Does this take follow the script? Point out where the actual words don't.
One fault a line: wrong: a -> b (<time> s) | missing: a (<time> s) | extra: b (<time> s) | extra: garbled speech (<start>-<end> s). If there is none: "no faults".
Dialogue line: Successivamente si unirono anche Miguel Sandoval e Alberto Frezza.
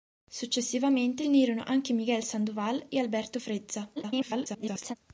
missing: si (1.2 s)
extra: garbled speech (4.0-5.0 s)